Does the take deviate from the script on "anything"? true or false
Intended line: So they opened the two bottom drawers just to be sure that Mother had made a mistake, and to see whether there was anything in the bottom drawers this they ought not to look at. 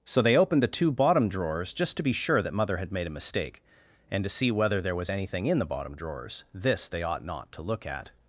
false